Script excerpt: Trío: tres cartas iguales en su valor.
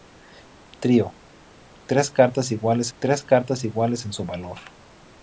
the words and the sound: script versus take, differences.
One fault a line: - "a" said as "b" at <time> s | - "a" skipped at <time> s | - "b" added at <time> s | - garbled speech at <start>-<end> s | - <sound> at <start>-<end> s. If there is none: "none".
- "tres cartas iguales" added at 3.0 s